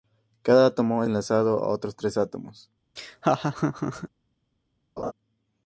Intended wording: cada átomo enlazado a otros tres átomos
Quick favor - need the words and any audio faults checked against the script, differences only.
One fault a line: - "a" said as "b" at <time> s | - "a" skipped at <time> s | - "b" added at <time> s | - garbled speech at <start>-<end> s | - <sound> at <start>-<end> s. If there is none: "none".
- laugh at 3.0-4.1 s
- laugh at 5.0-5.1 s